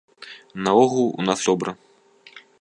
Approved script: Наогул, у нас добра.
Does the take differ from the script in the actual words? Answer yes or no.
no